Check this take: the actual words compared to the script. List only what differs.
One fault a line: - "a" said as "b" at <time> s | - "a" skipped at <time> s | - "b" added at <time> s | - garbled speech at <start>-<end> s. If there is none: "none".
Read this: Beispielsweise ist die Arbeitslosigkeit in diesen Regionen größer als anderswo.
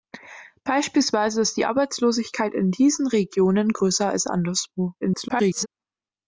- garbled speech at 5.0-5.7 s